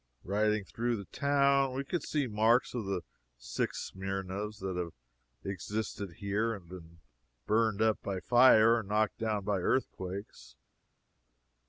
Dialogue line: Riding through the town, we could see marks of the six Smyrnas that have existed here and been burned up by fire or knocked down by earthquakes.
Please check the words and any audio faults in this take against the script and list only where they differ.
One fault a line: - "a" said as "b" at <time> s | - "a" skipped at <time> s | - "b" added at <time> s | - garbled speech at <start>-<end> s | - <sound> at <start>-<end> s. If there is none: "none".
none